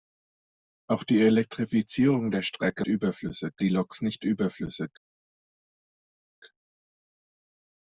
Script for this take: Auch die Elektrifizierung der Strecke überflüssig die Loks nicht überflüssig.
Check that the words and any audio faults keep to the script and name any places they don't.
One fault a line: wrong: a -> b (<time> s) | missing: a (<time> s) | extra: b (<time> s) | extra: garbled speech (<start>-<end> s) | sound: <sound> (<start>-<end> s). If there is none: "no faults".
no faults